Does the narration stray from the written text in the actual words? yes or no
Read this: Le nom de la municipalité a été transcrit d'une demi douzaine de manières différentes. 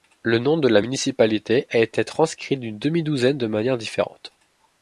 no